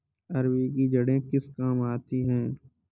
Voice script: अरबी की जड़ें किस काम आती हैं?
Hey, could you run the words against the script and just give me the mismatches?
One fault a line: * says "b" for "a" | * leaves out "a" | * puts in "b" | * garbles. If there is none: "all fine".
all fine